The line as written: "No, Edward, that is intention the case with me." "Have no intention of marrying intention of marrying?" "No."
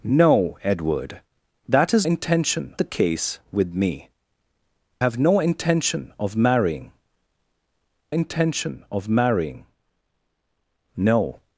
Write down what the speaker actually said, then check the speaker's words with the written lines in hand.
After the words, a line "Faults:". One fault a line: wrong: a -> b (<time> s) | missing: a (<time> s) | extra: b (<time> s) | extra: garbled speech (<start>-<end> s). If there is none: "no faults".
"No, Edward, that is intention the case with me." "Have no intention of marrying intention of marrying?" "No."
Faults:
no faults